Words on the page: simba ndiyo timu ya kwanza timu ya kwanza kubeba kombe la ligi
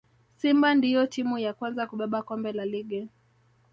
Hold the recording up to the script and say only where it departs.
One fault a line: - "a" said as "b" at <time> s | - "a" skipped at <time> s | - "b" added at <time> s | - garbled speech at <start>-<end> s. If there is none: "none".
- "timu ya kwanza" skipped at 1.9 s